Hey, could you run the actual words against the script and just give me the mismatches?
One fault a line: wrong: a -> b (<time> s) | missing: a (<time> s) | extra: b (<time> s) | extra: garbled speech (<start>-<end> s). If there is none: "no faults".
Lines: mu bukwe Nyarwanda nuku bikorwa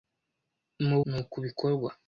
missing: bukwe Nyarwanda (1.0 s)